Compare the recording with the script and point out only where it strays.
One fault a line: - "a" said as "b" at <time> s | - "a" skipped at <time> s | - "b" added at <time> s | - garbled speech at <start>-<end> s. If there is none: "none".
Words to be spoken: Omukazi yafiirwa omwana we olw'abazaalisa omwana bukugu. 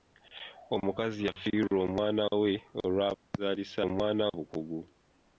none